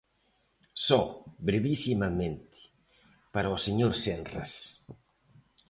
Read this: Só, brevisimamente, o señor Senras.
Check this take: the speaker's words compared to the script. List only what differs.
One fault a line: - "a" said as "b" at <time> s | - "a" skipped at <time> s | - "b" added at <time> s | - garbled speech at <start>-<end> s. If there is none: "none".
- "para" added at 3.3 s